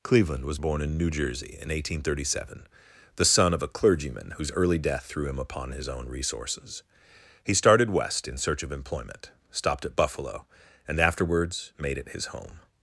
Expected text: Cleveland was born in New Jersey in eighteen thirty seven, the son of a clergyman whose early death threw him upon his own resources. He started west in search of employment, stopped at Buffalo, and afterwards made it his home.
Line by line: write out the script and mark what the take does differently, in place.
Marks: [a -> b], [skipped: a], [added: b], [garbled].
Cleveland was born in New Jersey in eighteen thirty seven, the son of a clergyman whose early death threw him upon his own resources. He started west in search of employment, stopped at Buffalo, and afterwards made it his home.